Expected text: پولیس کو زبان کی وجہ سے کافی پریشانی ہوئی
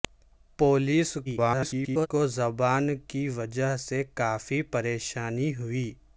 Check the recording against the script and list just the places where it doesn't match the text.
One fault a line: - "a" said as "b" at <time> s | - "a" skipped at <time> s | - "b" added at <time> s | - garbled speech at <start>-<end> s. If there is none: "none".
- garbled speech at 1.3-2.1 s